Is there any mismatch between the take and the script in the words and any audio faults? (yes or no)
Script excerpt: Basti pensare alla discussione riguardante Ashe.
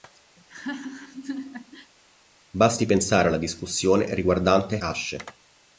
yes